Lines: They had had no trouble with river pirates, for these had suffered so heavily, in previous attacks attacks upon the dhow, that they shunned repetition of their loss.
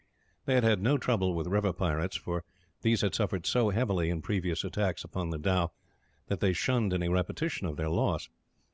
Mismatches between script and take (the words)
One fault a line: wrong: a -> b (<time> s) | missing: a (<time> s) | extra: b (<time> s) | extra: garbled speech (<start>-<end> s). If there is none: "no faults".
missing: attacks (5.0 s)
extra: any (6.9 s)